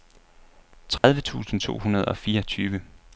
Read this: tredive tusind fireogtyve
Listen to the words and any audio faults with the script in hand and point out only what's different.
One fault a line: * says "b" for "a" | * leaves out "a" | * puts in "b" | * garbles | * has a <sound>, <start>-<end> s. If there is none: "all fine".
* has a dropout, 1.0-1.0 s
* puts in "to hundrede og"